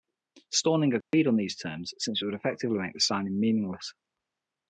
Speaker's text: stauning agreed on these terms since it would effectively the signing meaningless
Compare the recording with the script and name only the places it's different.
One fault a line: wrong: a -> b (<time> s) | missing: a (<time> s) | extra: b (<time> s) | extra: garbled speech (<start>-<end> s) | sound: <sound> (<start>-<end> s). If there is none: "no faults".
sound: dropout (1.0-1.1 s)
extra: make (2.8 s)